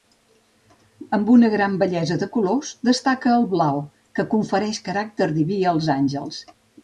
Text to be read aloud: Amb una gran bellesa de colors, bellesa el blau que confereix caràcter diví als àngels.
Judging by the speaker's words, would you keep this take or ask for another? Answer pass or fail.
fail